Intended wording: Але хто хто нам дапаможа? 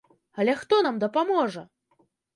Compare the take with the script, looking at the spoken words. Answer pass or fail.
fail